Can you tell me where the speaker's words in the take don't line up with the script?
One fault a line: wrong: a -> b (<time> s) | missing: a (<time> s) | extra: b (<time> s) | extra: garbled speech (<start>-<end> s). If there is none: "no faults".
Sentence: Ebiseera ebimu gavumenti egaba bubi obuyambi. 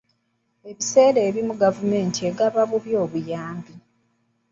no faults